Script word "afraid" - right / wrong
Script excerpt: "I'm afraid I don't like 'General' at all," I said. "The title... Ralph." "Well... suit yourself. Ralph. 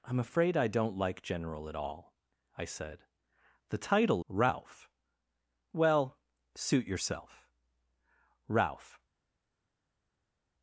right